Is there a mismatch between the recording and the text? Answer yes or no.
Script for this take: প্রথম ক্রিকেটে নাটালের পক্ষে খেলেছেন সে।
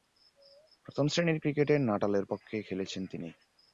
yes